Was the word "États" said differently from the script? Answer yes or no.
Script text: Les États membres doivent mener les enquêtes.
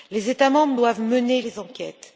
no